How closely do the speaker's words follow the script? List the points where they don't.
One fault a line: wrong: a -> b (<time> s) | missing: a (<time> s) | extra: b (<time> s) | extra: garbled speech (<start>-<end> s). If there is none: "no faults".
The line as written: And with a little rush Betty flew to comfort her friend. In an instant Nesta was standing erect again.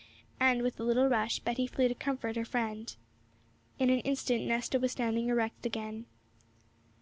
no faults